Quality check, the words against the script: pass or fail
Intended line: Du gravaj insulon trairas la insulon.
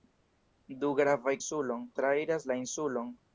pass